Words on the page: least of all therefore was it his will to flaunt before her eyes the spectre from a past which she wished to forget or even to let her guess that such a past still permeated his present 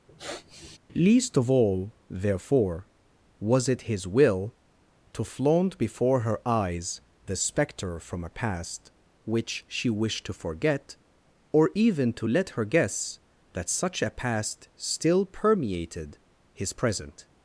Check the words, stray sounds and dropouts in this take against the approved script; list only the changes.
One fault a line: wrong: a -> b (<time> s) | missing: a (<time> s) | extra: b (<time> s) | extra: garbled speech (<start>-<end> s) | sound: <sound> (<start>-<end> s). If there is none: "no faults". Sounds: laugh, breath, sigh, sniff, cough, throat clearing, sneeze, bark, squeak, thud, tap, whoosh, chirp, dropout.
sound: sniff (0.1-0.8 s)